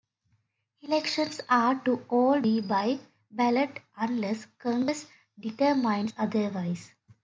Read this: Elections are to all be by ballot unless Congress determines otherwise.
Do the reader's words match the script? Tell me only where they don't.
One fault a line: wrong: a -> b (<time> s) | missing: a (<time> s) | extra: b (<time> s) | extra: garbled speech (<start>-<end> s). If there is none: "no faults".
no faults